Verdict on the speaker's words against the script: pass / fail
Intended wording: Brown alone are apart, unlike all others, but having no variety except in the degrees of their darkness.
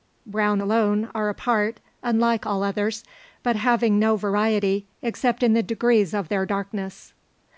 pass